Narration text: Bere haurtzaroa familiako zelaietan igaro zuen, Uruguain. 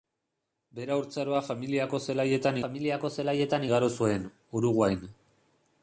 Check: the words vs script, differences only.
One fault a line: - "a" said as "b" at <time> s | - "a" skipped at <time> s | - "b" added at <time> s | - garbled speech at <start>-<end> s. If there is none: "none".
- "familiako zelaietan" added at 2.6 s